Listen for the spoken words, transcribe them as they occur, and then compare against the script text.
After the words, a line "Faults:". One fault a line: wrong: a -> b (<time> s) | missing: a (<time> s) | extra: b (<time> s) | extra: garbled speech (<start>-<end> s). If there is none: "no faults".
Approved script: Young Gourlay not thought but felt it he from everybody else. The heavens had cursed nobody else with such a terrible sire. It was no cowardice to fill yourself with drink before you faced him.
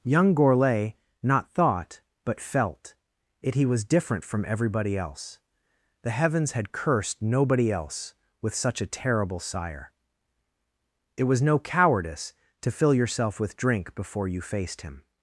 Young Gourlay not thought but felt it he was different from everybody else. The heavens had cursed nobody else with such a terrible sire. It was no cowardice to fill yourself with drink before you faced him.
Faults:
extra: was different (3.7 s)